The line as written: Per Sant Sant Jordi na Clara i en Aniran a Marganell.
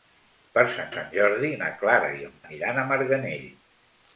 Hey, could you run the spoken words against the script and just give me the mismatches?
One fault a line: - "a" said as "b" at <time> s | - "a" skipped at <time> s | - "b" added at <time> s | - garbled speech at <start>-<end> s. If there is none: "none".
none